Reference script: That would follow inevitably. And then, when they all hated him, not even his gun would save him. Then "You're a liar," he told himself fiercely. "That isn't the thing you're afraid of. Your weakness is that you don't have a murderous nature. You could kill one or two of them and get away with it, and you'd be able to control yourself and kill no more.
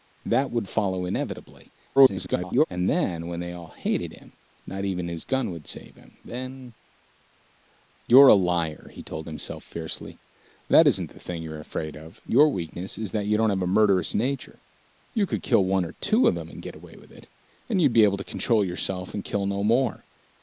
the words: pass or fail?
fail